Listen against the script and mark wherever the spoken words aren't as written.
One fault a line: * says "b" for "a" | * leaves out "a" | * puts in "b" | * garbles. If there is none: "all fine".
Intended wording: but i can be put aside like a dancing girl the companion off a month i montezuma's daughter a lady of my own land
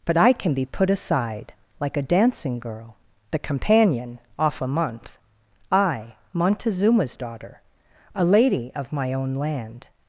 all fine